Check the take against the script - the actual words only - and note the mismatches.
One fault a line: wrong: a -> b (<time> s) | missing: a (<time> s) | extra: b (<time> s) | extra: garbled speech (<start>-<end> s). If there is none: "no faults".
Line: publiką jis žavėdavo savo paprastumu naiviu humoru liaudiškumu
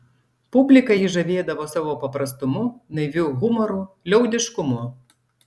no faults